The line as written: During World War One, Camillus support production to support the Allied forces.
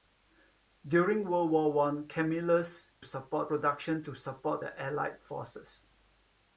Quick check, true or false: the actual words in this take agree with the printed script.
true